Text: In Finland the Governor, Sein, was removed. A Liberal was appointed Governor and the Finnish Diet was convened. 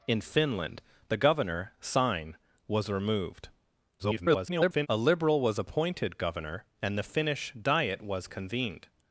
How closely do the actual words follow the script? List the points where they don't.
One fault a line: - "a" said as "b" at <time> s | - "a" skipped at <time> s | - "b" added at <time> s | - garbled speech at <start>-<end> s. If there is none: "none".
- garbled speech at 4.0-4.9 s